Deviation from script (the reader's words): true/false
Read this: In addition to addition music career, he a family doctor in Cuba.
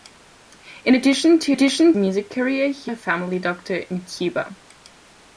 false